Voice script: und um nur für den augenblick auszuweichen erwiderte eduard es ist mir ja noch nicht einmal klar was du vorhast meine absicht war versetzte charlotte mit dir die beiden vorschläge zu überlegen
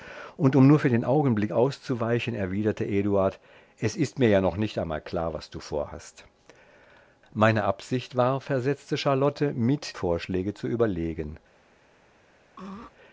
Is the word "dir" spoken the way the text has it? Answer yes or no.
no